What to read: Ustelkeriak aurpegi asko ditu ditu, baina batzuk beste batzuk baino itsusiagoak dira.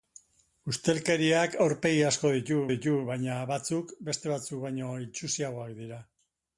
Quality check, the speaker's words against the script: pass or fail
pass